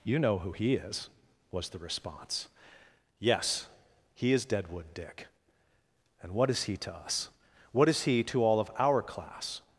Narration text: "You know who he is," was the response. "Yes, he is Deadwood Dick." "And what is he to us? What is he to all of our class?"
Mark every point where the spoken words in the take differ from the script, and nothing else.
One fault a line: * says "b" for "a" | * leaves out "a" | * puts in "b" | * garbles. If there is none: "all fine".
all fine